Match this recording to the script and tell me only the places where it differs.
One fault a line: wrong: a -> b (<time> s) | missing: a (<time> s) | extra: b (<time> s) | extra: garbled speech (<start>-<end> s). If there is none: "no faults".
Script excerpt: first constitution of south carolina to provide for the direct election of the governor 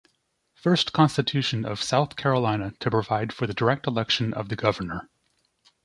no faults